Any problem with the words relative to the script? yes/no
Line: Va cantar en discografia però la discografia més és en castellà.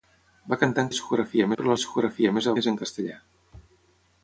no